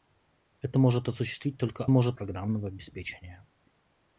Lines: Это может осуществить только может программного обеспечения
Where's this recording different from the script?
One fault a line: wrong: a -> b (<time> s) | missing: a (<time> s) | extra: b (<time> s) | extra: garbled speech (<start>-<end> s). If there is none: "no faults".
no faults